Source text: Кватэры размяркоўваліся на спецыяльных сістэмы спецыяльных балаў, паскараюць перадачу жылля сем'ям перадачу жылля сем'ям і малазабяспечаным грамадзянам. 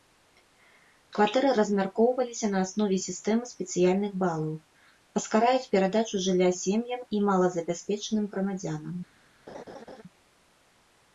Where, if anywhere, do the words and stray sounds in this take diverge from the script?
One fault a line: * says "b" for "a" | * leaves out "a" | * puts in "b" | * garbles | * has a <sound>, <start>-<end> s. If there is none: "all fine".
* says "аснове" for "спецыяльных"
* leaves out "перадачу жылля сем'ям"
* has a laugh, 9.5-10.0 s